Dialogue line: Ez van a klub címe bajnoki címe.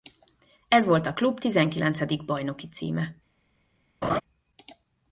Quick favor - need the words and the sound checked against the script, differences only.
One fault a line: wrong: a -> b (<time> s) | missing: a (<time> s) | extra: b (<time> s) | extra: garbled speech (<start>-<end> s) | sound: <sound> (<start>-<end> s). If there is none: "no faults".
wrong: van -> volt (0.8 s)
wrong: címe -> tizenkilencedik (1.4 s)
sound: laugh (4.0-4.2 s)